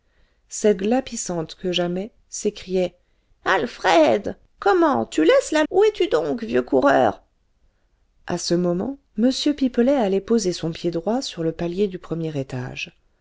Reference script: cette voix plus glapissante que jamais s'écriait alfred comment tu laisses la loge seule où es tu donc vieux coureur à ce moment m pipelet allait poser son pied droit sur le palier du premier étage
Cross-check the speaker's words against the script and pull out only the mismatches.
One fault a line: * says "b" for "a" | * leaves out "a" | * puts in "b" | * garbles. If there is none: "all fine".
* leaves out "voix plus"
* leaves out "loge seule"